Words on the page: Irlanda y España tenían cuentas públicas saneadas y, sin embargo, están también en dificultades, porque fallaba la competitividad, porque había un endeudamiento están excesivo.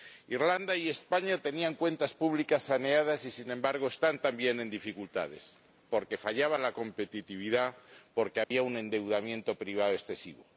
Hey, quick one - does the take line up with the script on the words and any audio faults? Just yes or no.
no